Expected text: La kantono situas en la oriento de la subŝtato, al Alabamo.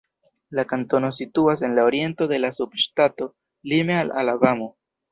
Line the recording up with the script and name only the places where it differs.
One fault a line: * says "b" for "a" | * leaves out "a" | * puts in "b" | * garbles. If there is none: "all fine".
* puts in "lime"